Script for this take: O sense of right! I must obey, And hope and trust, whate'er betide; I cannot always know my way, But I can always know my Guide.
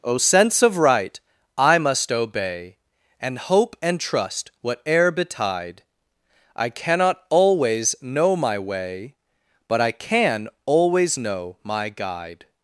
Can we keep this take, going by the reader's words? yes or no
yes